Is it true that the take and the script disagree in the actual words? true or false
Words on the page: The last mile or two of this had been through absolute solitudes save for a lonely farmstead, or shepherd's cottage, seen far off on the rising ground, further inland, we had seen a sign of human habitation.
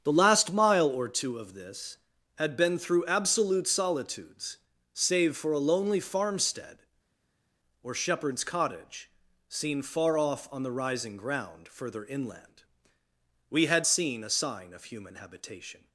false